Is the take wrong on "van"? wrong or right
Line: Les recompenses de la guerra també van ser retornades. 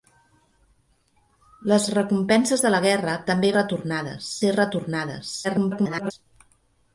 wrong